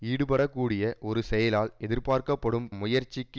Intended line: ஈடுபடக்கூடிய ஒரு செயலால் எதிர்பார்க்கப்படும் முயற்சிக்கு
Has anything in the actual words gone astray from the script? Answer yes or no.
no